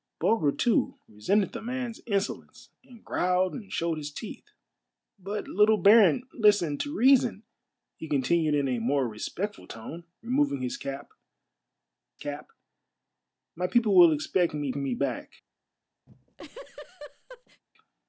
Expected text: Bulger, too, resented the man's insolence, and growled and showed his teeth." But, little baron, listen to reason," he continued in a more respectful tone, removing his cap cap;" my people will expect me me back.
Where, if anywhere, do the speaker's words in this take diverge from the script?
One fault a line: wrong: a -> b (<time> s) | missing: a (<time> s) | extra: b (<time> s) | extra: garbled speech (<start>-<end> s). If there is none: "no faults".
no faults